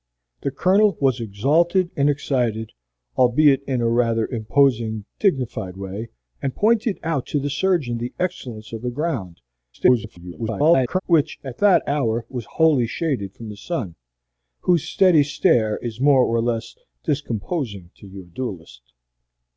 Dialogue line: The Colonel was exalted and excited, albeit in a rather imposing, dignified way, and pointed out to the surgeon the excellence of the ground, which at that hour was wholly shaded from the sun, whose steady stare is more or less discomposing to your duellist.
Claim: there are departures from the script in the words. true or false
true